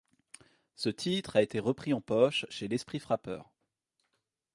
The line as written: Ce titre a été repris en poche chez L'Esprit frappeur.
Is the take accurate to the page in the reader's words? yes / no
yes